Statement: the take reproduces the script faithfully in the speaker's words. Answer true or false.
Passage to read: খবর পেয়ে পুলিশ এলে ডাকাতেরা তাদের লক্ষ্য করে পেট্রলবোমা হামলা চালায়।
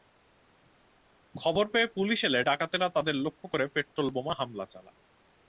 true